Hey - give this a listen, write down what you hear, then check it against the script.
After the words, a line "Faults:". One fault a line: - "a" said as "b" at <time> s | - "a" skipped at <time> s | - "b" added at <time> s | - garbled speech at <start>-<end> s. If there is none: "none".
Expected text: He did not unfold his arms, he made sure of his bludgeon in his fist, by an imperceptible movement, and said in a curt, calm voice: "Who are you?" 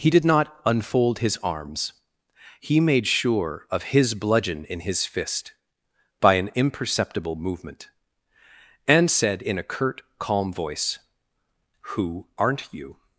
He did not unfold his arms, he made sure of his bludgeon in his fist, by an imperceptible movement, and said in a curt, calm voice: "Who aren't you?"
Faults:
- "are" said as "aren't" at 12.4 s